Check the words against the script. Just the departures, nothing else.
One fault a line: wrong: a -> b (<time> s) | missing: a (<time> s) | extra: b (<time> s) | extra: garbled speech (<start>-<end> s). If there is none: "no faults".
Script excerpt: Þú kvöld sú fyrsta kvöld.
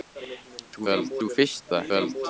no faults